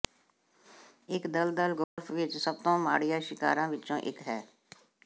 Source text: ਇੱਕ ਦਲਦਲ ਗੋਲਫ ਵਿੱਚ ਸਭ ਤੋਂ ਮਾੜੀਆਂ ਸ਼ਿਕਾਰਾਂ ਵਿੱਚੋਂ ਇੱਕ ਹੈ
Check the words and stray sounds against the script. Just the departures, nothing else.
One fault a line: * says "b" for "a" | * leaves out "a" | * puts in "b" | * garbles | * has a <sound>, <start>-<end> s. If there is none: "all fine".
* has a dropout, 1.8-2.0 s